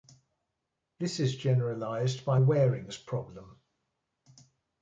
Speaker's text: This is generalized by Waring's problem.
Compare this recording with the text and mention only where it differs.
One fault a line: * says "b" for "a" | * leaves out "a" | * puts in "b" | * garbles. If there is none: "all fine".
all fine